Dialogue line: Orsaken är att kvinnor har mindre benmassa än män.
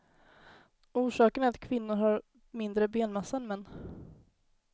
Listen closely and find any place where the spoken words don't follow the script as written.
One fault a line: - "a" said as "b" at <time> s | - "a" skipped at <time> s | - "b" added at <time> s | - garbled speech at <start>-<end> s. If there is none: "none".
none